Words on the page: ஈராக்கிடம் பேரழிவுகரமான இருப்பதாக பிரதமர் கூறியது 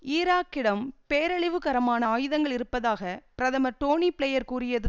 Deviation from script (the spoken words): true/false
true